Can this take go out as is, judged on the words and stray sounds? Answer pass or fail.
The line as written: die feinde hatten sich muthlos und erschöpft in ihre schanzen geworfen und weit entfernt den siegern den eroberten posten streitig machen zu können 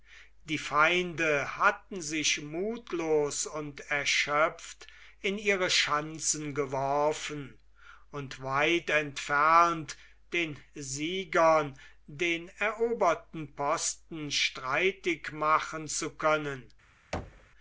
fail